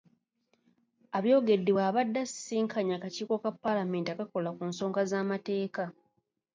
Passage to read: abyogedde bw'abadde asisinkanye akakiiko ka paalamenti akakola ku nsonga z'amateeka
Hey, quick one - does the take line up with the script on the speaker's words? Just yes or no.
yes